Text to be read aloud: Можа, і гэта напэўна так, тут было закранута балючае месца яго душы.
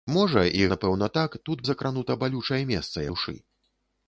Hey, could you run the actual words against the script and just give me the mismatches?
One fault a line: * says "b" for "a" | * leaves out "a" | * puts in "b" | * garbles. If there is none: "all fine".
* leaves out "гэта"
* leaves out "было"
* leaves out "яго"